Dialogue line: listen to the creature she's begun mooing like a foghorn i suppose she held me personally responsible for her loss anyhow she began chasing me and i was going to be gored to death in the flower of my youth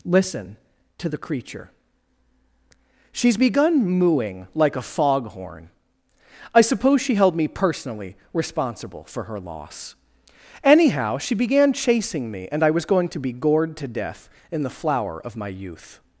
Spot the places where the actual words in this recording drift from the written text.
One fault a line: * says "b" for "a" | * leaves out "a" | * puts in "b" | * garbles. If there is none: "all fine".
all fine